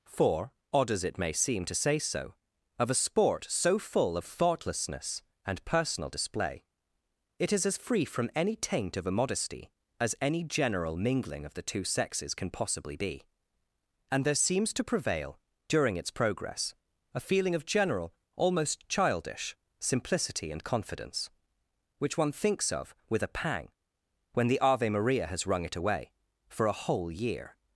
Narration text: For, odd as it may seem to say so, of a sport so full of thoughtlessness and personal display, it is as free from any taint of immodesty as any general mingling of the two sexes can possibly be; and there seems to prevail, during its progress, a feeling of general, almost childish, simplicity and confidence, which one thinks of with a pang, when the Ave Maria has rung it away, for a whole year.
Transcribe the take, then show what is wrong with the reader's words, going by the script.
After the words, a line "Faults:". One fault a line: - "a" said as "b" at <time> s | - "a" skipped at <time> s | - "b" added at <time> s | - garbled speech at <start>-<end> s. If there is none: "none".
For, odd as it may seem to say so, of a sport so full of thoughtlessness and personal display, it is as free from any taint of immodesty as any general mingling of the two sexes can possibly be; and there seems to prevail, during its progress, a feeling of general, almost childish, simplicity and confidence, which one thinks of with a pang, when the Ave Maria has rung it away, for a whole year.
Faults:
none